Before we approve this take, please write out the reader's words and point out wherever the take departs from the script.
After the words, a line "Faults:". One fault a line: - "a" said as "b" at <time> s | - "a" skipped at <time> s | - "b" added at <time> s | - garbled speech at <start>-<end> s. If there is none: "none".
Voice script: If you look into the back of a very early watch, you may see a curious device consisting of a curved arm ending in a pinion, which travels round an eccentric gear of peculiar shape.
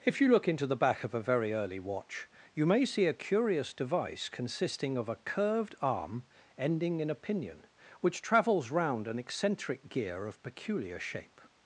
If you look into the back of a very early watch, you may see a curious device consisting of a curved arm ending in a pinion, which travels round an eccentric gear of peculiar shape.
Faults:
none